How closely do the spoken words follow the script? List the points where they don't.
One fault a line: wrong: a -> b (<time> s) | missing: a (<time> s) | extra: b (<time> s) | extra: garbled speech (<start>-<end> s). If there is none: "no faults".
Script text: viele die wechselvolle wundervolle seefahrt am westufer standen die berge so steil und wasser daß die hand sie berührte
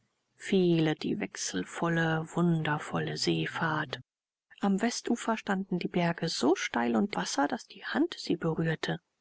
no faults